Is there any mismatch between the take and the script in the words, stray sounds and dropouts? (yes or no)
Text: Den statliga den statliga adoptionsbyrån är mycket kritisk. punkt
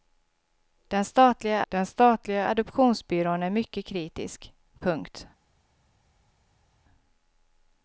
no